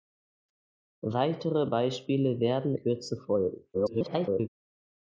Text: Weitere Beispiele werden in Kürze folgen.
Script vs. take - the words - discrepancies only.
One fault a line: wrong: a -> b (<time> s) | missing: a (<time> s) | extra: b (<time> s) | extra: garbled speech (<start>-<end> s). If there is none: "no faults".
missing: in (2.8 s)
extra: garbled speech (3.7-4.5 s)